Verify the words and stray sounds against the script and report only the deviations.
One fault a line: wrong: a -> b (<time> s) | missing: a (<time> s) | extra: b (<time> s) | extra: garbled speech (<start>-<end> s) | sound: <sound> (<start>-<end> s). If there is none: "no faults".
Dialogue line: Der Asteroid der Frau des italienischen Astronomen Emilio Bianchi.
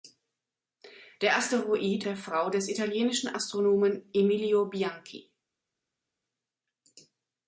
no faults